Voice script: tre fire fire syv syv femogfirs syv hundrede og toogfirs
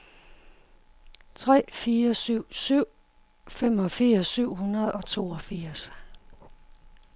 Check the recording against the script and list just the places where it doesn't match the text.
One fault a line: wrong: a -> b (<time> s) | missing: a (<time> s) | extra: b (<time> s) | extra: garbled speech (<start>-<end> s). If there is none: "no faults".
missing: fire (2.1 s)